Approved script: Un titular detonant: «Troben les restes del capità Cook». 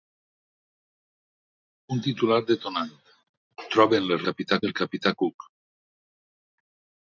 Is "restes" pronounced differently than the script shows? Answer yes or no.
yes